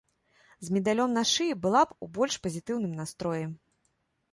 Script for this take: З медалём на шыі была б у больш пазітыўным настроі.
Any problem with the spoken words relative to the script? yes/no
no